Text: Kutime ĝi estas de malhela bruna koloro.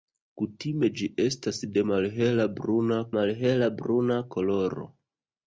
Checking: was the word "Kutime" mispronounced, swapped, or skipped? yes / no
no